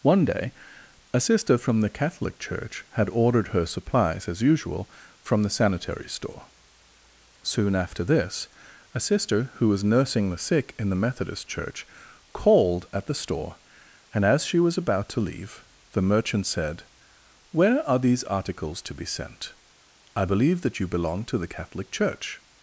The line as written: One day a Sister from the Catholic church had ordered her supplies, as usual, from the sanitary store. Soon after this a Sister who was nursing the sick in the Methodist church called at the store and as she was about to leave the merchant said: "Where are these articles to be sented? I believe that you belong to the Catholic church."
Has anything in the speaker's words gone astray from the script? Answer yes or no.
yes